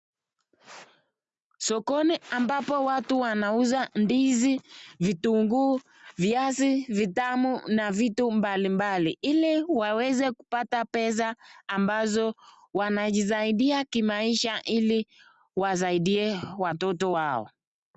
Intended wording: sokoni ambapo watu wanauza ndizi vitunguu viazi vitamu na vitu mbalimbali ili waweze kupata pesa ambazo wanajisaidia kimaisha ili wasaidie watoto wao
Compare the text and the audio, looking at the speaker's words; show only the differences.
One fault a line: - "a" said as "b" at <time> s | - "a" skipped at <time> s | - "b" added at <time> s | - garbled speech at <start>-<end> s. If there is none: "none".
none